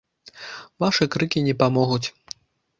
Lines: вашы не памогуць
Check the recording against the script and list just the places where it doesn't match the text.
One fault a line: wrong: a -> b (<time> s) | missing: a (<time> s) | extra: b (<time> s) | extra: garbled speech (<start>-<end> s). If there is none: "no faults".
extra: крыкі (1.2 s)